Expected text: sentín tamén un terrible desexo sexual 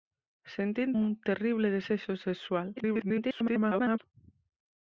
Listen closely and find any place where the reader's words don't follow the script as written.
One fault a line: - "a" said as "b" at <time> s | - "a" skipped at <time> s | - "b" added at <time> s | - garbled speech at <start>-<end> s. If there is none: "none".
- "tamén" skipped at 0.9 s
- garbled speech at 2.8-4.0 s